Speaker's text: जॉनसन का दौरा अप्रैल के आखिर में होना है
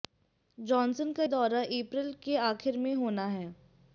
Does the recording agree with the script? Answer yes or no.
yes